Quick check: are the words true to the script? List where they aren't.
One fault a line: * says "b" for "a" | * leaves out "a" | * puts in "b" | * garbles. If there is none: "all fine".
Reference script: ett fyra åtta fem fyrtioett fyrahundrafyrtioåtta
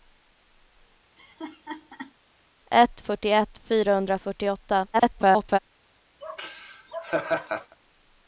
* leaves out "fyra åtta fem"
* garbles